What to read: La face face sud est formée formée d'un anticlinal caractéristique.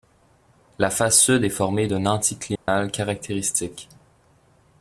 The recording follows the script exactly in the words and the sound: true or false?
false